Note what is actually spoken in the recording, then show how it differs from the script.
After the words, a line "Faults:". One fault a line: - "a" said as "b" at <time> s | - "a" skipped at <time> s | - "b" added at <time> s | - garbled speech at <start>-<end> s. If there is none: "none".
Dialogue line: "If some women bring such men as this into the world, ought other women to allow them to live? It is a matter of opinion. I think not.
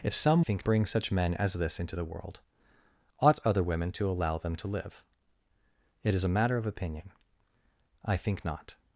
"If some think bring such men as this into the world, ought other women to allow them to live? It is a matter of opinion. I think not.
Faults:
- "women" said as "think" at 0.4 s